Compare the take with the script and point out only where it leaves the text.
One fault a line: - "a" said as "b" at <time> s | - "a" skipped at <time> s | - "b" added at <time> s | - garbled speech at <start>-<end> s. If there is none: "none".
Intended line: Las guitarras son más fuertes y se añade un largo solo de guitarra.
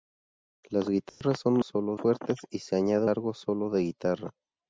- "más" said as "solo" at 1.6 s
- "un" skipped at 3.1 s